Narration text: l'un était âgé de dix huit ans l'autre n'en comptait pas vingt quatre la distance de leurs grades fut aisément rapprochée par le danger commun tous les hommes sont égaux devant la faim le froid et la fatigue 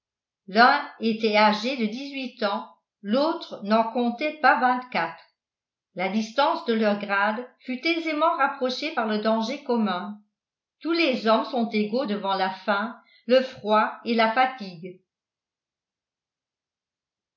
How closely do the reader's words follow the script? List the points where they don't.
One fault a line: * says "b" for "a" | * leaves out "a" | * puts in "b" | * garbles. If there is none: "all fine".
all fine